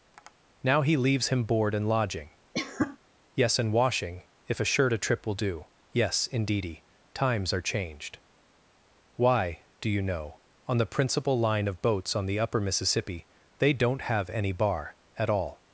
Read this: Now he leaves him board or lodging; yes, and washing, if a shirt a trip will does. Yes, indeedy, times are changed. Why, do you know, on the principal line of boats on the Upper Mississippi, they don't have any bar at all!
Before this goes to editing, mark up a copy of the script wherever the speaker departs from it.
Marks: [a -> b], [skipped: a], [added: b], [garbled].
Now he leaves him board [or -> and] lodging; yes, and washing, if a shirt a trip will [does. -> do] Yes, indeedy, times are changed. Why, do you know, on the principal line of boats on the Upper Mississippi, they don't have any bar at all!